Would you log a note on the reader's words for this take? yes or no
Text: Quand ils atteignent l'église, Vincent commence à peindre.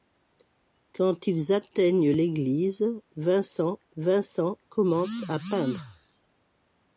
yes